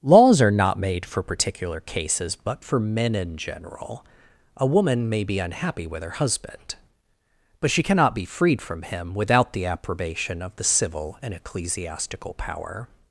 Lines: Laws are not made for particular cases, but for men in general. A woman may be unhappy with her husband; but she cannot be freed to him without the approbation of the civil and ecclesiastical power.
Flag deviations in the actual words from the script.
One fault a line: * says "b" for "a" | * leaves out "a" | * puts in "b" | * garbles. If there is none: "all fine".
* says "from" for "to"